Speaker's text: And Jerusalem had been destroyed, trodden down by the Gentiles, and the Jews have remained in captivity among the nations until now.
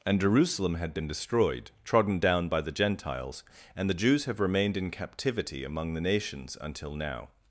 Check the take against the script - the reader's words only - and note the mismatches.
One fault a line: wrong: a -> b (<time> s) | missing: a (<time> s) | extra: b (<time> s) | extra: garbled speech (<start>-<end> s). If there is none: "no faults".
no faults